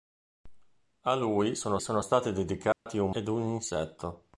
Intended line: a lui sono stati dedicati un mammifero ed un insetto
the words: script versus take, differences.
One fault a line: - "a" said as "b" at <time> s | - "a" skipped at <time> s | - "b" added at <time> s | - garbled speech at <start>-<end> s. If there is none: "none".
- "sono" added at 1.8 s
- "mammifero" skipped at 3.1 s